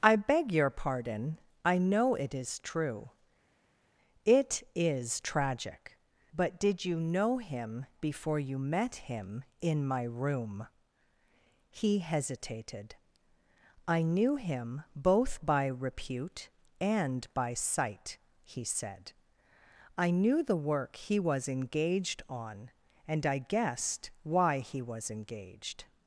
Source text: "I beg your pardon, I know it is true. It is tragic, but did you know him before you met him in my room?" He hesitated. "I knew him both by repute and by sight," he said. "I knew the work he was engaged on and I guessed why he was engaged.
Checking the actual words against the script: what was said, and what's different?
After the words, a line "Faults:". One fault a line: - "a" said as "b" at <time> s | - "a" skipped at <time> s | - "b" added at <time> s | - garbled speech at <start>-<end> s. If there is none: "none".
"I beg your pardon, I know it is true. It is tragic, but did you know him before you met him in my room?" He hesitated. "I knew him both by repute and by sight," he said. "I knew the work he was engaged on and I guessed why he was engaged.
Faults:
none